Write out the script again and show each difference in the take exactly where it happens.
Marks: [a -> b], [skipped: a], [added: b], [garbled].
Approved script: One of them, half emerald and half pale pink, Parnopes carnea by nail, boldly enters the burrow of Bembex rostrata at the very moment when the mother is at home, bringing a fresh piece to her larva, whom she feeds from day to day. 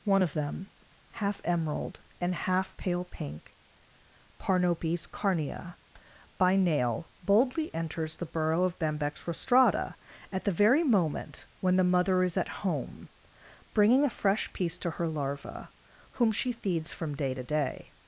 One of them, half emerald and half pale pink, Parnopes carnea by nail, boldly enters the burrow of Bembex rostrata at the very moment when the mother is at home, bringing a fresh piece to her larva, whom she feeds from day to day.